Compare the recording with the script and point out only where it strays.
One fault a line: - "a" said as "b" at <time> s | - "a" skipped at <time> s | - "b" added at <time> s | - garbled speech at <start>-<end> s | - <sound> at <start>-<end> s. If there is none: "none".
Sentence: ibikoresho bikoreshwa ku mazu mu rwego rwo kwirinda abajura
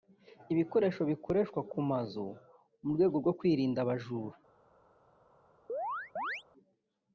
- chirp at 5.7-6.4 s